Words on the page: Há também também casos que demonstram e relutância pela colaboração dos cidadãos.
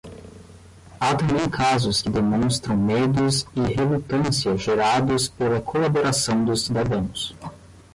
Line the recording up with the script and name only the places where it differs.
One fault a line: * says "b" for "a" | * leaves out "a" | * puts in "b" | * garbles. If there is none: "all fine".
* leaves out "também"
* puts in "medos"
* puts in "gerados"